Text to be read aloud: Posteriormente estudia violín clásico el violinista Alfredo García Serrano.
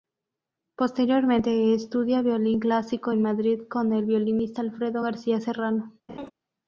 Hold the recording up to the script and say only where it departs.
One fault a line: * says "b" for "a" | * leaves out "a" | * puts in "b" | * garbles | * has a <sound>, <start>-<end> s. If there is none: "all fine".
* puts in "en Madrid con"
* has a laugh, 6.1-6.3 s